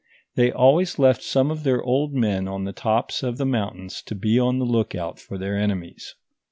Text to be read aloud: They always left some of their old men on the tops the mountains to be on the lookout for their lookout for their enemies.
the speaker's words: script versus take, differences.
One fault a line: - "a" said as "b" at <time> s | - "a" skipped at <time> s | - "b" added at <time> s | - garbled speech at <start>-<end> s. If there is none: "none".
- "of" added at 3.2 s
- "lookout for their" skipped at 5.6 s